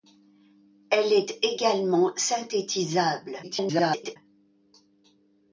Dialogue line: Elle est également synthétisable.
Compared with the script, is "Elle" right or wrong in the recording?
right